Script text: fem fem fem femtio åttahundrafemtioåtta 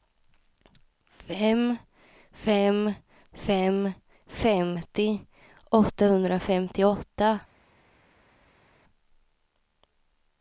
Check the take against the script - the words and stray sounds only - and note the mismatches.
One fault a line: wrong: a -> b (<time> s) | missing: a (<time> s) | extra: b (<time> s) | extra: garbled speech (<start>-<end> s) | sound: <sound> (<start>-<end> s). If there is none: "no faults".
no faults